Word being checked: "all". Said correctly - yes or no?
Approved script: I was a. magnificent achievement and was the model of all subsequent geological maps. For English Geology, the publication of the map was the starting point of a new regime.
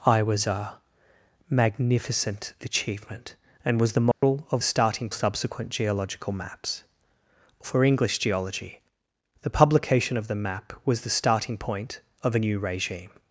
no